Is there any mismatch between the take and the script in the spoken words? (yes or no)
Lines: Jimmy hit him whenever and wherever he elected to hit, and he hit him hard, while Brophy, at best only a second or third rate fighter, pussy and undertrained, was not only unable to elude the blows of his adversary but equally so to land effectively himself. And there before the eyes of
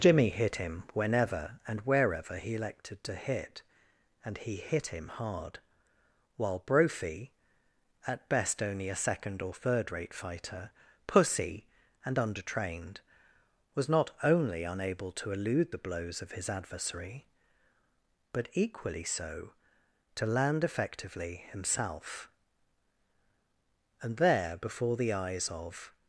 no